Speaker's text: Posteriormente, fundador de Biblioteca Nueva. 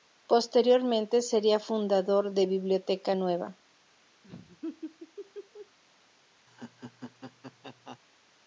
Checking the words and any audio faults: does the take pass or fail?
fail